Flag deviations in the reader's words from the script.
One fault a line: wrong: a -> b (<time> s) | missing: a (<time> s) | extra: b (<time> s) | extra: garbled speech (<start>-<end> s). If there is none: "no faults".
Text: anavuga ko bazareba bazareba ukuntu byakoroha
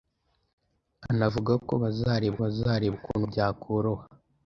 no faults